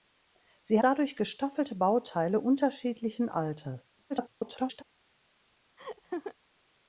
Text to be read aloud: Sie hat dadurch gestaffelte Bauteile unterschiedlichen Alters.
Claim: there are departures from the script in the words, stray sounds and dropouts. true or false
true